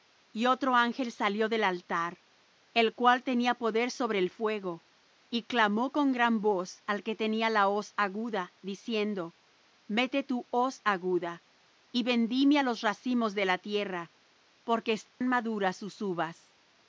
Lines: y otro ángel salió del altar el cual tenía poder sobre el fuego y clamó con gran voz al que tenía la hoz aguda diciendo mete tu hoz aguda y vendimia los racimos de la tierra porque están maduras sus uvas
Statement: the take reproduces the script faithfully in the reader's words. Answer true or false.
true